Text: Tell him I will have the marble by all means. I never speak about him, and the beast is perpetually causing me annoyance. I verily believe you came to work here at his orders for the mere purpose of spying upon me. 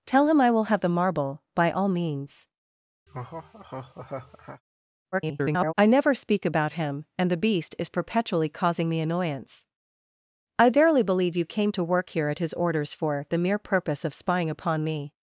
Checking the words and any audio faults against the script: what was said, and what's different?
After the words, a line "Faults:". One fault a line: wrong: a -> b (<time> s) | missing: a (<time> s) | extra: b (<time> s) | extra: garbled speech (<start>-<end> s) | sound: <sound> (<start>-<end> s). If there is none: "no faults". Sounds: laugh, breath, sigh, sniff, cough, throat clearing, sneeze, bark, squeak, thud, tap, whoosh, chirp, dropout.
Tell him I will have the marble by all means. [garbled] I never speak about him, and the beast is perpetually causing me annoyance. I verily believe you came to work here at his orders for the mere purpose of spying upon me.
Faults:
sound: laugh (3.1-4.6 s)
extra: garbled speech (5.1-5.7 s)